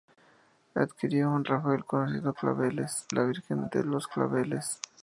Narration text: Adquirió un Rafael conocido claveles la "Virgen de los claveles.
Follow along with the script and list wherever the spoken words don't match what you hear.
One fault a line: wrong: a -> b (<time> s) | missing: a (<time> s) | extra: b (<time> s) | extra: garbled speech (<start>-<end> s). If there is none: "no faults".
no faults